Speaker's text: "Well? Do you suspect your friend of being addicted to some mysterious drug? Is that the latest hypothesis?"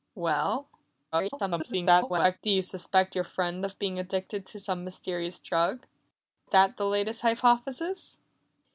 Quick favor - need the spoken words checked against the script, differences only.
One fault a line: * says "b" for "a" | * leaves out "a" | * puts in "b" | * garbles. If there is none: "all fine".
* garbles
* leaves out "Is"